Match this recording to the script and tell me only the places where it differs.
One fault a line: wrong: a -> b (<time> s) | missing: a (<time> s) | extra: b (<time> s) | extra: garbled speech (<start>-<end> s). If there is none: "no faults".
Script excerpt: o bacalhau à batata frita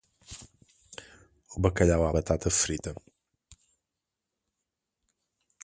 no faults